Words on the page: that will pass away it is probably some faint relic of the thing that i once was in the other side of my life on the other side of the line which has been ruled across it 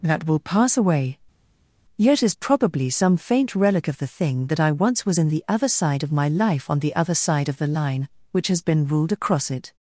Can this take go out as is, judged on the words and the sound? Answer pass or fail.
fail